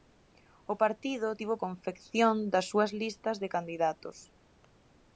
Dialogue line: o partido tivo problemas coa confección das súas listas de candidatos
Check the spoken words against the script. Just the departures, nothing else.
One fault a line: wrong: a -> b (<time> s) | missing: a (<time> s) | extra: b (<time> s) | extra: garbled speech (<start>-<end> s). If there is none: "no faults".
missing: problemas coa (1.5 s)